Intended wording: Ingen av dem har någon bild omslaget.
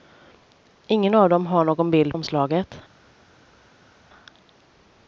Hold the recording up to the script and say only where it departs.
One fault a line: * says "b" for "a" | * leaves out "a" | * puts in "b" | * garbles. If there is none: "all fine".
all fine